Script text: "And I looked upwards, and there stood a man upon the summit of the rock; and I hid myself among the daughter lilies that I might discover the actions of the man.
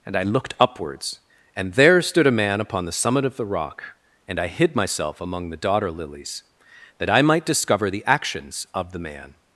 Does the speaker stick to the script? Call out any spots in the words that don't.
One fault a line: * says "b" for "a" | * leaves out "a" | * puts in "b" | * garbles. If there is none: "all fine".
all fine